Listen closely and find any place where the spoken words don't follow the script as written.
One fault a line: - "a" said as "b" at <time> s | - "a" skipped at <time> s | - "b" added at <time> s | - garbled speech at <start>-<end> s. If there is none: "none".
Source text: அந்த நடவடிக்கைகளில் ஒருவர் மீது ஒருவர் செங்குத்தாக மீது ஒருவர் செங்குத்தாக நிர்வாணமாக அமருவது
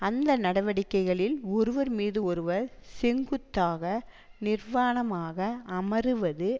- "மீது ஒருவர் செங்குத்தாக" skipped at 3.8 s